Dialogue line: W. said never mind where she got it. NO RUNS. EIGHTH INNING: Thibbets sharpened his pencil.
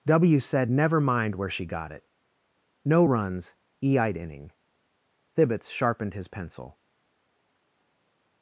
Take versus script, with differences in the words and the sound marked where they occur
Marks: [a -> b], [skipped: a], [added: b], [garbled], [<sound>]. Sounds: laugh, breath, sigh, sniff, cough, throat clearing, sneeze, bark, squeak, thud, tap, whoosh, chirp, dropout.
W. said never mind where she got it. NO RUNS. [EIGHTH -> E eyed] INNING: Thibbets sharpened his pencil.